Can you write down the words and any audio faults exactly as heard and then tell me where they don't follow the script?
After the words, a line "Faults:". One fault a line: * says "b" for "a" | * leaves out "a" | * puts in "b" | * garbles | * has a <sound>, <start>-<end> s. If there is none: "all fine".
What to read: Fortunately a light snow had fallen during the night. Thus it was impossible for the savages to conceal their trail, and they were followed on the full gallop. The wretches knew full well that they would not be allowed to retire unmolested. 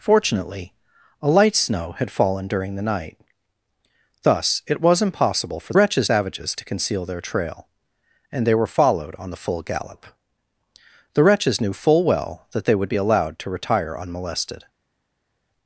Fortunately a light snow had fallen during the night. Thus it was impossible for wretches savages to conceal their trail, and they were followed on the full gallop. The wretches knew full well that they would be allowed to retire unmolested.
Faults:
* says "wretches" for "the"
* leaves out "not"